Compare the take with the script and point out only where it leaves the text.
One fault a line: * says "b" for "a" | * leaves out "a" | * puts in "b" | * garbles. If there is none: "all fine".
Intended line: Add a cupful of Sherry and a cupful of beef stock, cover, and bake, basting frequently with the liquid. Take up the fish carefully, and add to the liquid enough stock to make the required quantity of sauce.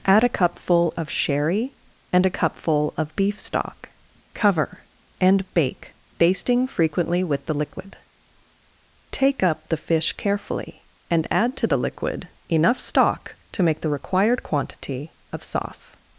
all fine